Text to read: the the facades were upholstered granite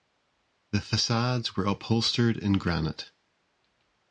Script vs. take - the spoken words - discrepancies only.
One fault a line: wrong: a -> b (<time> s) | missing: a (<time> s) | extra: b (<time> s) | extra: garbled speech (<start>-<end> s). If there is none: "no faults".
missing: the (0.8 s)
extra: in (2.4 s)